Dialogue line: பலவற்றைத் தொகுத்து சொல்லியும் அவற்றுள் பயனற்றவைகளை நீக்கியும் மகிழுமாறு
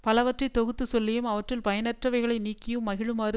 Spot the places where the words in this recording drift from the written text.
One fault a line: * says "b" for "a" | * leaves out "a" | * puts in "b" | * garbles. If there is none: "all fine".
all fine